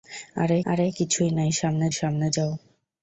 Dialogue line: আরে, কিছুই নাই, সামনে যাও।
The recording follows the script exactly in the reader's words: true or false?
false